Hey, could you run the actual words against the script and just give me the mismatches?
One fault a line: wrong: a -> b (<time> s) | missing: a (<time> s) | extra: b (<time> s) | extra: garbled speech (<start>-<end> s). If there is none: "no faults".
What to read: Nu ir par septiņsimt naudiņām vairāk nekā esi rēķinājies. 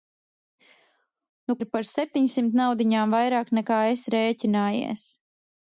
no faults